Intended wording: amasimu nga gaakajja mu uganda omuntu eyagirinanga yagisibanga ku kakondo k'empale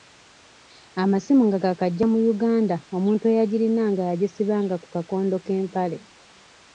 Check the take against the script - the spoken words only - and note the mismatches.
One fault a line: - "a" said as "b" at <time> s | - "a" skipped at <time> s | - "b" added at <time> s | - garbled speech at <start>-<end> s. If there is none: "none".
none